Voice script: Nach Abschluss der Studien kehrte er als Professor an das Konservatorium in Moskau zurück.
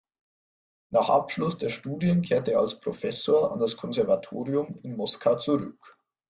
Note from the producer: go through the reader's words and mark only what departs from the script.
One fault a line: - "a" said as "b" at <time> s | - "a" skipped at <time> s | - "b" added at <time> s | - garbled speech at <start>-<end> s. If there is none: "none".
none